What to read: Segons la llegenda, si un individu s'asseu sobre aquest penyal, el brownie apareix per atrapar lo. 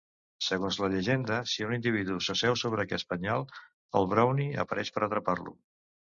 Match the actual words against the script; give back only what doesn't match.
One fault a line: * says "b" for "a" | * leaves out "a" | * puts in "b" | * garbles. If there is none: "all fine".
all fine